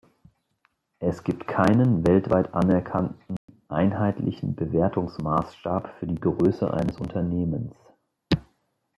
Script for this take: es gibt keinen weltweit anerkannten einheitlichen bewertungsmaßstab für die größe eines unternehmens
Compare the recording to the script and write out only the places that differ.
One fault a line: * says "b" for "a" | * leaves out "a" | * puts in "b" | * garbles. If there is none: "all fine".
all fine